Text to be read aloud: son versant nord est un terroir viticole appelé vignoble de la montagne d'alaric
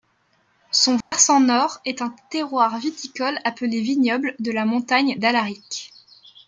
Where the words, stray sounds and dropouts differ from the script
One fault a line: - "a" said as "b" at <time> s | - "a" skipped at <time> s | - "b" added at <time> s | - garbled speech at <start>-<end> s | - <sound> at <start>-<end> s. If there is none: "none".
- dropout at 1.0-1.1 s